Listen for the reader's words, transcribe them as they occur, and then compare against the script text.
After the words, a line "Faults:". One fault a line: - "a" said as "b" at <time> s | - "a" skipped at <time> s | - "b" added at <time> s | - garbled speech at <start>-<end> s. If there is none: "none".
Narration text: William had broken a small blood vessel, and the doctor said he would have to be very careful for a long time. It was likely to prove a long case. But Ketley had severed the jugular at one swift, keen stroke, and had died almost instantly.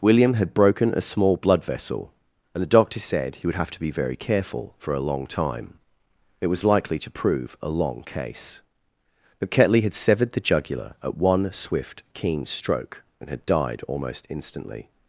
William had broken a small blood vessel, and the doctor said he would have to be very careful for a long time. It was likely to prove a long case. But Ketley had severed the jugular at one swift, keen stroke, and had died almost instantly.
Faults:
none